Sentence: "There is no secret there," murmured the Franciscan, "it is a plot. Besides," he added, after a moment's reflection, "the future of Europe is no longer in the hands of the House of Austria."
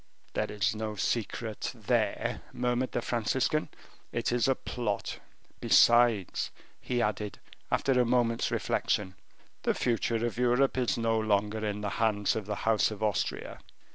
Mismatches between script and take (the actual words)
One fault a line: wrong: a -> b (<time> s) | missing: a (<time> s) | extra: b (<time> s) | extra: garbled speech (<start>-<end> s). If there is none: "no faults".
no faults